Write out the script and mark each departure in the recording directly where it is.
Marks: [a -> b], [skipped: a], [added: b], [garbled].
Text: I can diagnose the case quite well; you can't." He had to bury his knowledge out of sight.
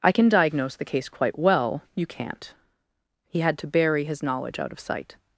I can diagnose the case quite well; you can't." He had to bury his knowledge out of sight.